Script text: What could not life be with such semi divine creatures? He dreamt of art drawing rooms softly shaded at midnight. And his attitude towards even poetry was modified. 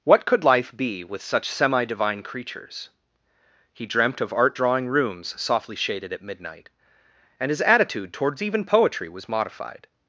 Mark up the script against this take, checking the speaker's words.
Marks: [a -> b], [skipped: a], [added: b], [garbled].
What could [skipped: not] life be with such semi divine creatures? He dreamt of art drawing rooms softly shaded at midnight. And his attitude towards even poetry was modified.